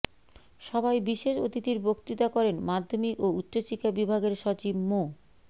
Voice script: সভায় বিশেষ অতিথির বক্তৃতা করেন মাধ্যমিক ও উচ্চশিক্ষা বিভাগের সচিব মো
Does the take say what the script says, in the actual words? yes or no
yes